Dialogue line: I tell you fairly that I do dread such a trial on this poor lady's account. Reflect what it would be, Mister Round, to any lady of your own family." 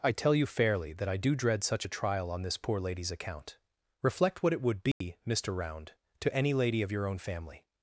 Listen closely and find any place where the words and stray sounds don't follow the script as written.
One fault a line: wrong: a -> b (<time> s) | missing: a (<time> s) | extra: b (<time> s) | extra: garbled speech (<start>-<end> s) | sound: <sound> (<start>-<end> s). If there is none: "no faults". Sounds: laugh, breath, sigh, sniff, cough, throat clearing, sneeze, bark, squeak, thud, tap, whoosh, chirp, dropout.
sound: dropout (4.9-5.0 s)